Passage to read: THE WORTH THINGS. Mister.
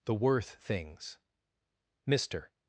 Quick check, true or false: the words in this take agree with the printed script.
true